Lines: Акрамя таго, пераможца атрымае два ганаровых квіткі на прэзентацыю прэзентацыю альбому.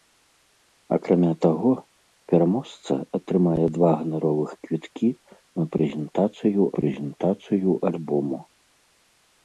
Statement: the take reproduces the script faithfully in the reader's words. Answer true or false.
true